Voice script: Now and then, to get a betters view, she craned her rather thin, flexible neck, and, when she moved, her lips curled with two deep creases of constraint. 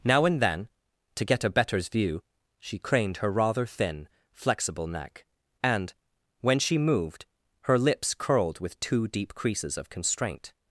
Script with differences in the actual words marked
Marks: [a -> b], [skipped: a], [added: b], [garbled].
Now and then, to get a betters view, she craned her rather thin, flexible neck, and, when she moved, her lips curled with two deep creases of constraint.